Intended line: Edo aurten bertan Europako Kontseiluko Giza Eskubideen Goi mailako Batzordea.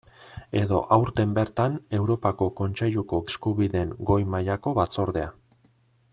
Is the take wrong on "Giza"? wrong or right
wrong